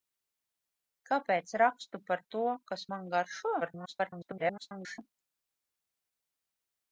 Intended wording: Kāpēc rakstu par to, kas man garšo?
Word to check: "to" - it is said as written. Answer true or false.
true